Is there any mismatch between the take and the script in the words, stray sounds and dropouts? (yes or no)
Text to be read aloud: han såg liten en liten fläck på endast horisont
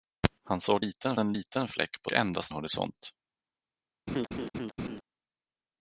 yes